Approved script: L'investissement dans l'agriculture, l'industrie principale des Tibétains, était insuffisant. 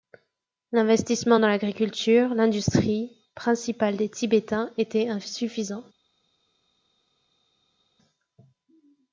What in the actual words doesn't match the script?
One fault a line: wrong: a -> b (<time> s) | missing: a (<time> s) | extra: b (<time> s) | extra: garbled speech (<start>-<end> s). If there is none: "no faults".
no faults